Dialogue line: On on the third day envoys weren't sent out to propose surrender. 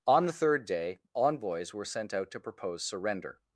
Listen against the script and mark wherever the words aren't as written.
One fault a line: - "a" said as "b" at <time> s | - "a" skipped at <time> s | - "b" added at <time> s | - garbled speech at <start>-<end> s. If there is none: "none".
- "on" skipped at 0.2 s
- "weren't" said as "were" at 1.8 s